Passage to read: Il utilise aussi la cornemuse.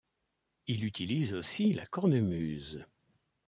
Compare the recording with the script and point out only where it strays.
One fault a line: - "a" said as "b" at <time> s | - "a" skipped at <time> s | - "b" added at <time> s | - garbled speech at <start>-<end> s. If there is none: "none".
none